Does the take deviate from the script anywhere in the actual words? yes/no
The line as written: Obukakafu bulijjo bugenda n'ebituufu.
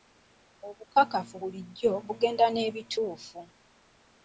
no